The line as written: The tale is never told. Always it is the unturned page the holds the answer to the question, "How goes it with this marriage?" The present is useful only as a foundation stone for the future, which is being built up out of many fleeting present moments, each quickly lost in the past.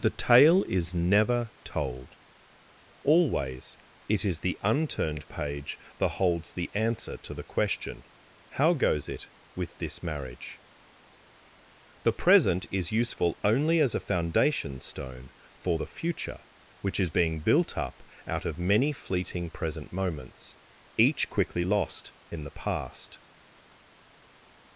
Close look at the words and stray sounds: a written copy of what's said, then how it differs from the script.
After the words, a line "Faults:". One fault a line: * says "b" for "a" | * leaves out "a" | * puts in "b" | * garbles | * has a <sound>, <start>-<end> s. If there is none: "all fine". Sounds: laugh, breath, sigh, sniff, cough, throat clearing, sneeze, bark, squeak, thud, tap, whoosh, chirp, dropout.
The tale is never told. Always it is the unturned page that holds the answer to the question, "How goes it with this marriage?" The present is useful only as a foundation stone for the future, which is being built up out of many fleeting present moments, each quickly lost in the past.
Faults:
* says "that" for "the"